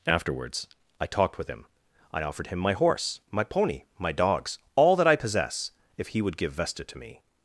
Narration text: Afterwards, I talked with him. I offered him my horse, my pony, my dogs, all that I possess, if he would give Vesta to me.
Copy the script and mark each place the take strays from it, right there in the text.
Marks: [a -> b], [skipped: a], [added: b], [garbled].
Afterwards, I talked with him. I offered him my horse, my pony, my dogs, all that I possess, if he would give Vesta to me.